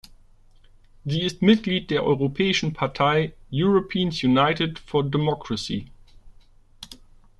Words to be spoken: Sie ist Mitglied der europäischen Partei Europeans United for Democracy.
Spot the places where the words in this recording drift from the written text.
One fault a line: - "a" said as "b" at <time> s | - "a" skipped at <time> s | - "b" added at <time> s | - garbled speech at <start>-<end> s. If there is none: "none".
none